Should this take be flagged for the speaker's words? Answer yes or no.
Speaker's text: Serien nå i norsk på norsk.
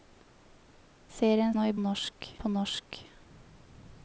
no